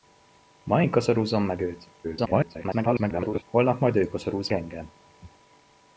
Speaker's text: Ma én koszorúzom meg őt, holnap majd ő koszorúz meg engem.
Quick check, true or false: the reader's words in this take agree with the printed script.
false